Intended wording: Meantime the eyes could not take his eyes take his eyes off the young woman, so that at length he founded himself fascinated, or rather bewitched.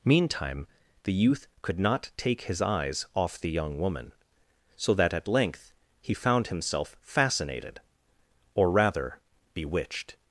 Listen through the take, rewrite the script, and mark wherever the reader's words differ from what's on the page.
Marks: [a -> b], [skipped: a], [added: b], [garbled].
Meantime the [eyes -> youth] could not take his eyes [skipped: take his eyes] off the young woman, so that at length he [founded -> found] himself fascinated, or rather bewitched.